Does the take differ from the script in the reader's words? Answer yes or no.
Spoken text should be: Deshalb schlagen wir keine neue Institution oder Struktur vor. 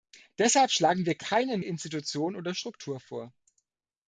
yes